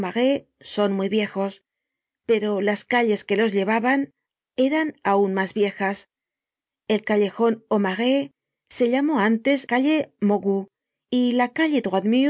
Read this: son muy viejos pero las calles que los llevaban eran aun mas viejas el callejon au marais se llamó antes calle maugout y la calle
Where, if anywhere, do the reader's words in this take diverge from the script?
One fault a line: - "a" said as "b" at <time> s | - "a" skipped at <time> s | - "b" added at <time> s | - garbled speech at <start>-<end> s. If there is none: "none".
none